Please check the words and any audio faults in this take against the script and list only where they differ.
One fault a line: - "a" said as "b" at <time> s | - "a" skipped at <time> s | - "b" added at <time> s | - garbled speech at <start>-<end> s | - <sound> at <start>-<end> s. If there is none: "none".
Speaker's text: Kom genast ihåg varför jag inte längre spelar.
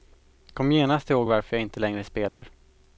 - dropout at 2.3-2.4 s